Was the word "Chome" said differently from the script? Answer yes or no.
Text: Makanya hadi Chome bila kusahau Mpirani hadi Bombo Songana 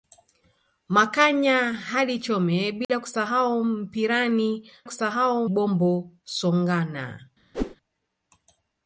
no